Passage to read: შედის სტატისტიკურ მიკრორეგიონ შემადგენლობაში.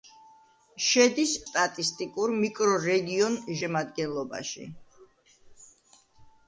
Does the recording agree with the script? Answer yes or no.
yes